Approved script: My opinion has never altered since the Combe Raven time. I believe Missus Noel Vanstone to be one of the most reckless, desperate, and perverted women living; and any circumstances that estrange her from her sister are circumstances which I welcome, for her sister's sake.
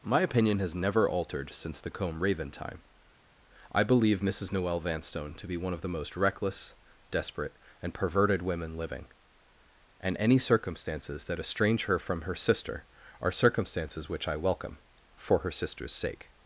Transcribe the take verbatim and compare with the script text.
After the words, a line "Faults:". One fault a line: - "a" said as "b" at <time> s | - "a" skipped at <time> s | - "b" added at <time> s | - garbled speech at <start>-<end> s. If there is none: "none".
My opinion has never altered since the Combe Raven time. I believe Missus Noel Vanstone to be one of the most reckless, desperate, and perverted women living; and any circumstances that estrange her from her sister are circumstances which I welcome, for her sister's sake.
Faults:
none